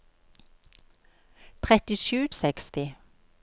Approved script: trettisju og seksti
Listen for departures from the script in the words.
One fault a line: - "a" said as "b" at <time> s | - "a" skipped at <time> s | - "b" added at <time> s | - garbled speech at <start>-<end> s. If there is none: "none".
none